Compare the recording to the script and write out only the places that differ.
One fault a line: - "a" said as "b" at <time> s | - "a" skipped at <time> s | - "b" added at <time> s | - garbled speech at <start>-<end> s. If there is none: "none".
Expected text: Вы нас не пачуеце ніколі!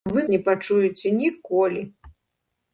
- "нас" skipped at 0.2 s